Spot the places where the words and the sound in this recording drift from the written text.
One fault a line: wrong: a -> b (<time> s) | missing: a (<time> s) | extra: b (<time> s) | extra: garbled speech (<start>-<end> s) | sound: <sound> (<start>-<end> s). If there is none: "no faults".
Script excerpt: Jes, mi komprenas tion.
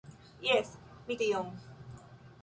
missing: komprenas (1.2 s)